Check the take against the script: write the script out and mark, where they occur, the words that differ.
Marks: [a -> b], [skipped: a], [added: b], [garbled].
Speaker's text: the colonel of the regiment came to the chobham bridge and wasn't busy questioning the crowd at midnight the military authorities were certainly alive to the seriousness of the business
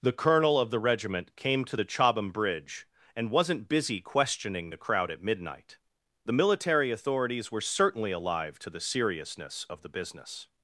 the colonel of the regiment came to the chobham bridge and wasn't busy questioning the crowd at midnight the military authorities were certainly alive to the seriousness of the business